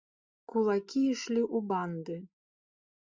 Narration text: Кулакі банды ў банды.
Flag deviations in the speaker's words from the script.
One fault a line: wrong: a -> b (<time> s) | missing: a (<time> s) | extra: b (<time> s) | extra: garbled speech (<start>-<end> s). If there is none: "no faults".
wrong: банды -> ішлі (1.1 s)